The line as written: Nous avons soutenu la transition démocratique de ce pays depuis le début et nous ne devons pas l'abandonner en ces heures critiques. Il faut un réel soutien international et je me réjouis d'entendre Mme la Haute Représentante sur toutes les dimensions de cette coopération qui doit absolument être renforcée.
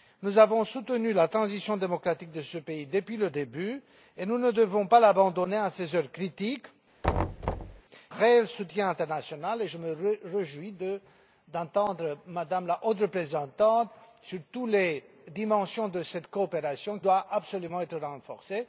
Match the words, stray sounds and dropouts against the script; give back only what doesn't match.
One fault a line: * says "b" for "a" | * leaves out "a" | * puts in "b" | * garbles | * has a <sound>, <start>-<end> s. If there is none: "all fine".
* leaves out "Il faut un"
* has a thud, 7.0-7.8 s
* leaves out "qui"